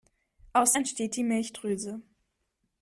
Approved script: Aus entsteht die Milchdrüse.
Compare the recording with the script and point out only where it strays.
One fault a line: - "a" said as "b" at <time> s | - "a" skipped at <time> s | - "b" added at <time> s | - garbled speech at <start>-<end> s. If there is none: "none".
none